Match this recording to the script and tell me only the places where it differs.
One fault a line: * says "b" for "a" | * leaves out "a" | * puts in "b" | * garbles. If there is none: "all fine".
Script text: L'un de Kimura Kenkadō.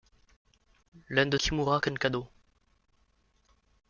all fine